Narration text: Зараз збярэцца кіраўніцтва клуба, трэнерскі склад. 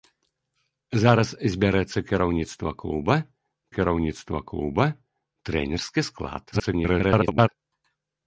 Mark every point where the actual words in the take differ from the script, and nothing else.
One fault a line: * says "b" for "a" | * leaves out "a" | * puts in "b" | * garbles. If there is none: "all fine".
* puts in "кіраўніцтва клуба"
* garbles